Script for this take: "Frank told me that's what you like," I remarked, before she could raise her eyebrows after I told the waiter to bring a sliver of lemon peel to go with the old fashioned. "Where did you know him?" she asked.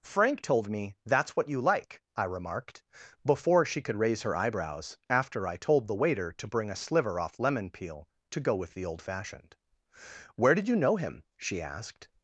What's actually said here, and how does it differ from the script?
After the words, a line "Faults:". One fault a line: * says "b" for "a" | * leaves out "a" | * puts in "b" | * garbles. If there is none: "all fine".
"Frank told me that's what you like," I remarked, before she could raise her eyebrows after I told the waiter to bring a sliver off lemon peel to go with the old fashioned. "Where did you know him?" she asked.
Faults:
* says "off" for "of"